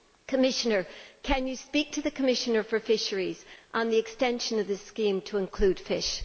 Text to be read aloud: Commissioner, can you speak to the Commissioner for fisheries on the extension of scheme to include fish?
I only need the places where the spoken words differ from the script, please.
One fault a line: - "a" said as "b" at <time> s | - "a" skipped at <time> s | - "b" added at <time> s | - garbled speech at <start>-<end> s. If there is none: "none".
- "this" added at 4.7 s